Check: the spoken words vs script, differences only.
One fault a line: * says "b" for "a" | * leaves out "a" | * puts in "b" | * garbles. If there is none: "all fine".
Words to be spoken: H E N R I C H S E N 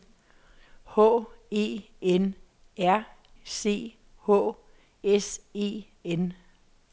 * leaves out "I"